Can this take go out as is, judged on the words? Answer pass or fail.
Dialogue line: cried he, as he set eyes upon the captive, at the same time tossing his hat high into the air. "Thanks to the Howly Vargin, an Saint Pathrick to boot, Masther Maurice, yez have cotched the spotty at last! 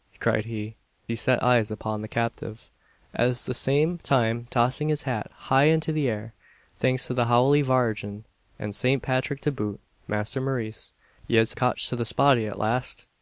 fail